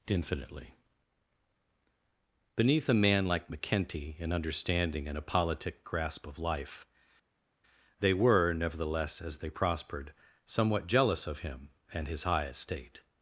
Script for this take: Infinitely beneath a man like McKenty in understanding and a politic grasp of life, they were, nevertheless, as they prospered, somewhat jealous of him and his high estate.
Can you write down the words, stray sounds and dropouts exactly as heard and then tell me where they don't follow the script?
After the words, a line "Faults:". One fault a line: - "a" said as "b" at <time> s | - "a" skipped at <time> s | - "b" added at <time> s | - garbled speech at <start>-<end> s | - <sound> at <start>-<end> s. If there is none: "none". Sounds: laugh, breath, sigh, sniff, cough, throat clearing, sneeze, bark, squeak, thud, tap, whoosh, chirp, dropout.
Infinitely beneath a man like McKenty in understanding and a politic grasp of life, they were, nevertheless, as they prospered, somewhat jealous of him and his high estate.
Faults:
none